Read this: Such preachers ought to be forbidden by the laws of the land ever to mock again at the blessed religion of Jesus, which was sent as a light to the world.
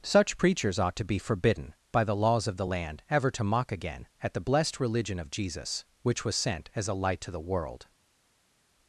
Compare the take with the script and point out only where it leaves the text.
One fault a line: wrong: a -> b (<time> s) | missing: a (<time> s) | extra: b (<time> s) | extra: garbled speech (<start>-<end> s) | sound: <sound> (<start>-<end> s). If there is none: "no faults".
no faults